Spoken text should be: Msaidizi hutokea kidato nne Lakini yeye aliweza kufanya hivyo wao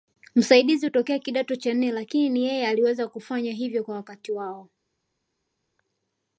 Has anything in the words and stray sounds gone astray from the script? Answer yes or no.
yes